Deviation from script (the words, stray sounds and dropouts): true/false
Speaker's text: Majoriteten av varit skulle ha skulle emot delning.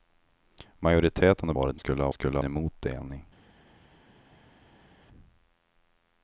false